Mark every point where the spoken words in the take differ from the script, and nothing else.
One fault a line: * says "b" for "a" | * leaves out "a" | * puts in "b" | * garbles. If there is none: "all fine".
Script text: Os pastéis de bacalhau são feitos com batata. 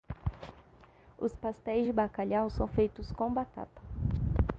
all fine